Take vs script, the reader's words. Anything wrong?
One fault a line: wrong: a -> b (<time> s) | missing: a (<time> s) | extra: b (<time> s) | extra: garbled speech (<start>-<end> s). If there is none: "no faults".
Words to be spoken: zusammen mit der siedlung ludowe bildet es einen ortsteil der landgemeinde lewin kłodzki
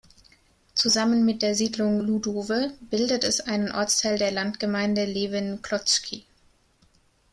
no faults